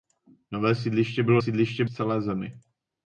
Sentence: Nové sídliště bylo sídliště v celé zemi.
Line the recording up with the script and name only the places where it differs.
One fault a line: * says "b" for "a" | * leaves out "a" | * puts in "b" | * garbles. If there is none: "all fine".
all fine